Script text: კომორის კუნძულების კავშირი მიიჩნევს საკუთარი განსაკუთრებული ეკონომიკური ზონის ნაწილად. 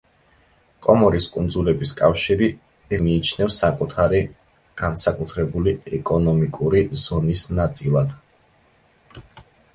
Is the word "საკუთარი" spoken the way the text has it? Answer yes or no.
yes